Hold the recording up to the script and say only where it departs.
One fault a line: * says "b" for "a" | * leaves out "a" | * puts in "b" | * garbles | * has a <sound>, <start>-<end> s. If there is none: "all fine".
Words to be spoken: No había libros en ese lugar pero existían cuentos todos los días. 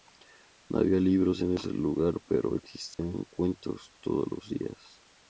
* has a dropout, 2.9-3.0 s